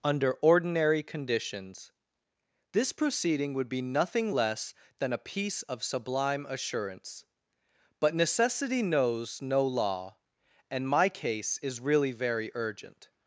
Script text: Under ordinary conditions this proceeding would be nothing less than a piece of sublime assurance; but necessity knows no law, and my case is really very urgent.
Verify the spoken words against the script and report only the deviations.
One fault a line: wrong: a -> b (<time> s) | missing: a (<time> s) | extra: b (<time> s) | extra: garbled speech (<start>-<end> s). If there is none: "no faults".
no faults